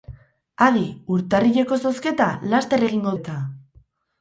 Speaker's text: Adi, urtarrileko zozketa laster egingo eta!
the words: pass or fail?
pass